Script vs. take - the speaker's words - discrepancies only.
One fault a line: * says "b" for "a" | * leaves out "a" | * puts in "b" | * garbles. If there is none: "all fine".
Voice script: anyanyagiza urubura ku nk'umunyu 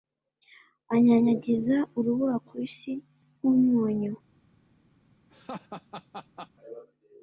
* puts in "isi"